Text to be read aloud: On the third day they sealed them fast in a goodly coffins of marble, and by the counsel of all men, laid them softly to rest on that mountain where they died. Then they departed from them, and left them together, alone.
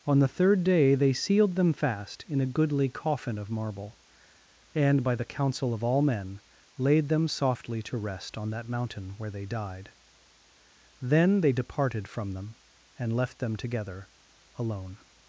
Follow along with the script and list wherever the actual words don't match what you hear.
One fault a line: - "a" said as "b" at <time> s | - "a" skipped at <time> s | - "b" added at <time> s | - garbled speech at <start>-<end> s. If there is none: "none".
- "coffins" said as "coffin" at 2.9 s